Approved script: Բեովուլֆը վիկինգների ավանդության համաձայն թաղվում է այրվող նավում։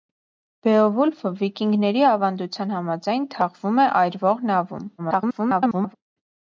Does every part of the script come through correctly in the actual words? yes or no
no